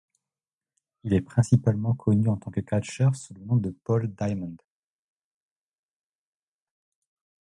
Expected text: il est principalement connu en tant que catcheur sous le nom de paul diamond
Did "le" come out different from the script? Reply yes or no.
no